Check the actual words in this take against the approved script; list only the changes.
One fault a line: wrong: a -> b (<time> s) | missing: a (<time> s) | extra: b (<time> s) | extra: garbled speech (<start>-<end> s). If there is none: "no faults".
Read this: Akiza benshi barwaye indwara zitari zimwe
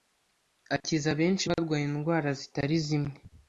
no faults